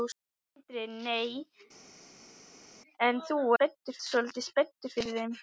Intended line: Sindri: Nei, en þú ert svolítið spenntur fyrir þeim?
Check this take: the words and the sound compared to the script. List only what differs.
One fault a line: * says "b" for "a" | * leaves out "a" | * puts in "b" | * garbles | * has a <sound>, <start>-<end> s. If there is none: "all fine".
* says "spenntur" for "ert"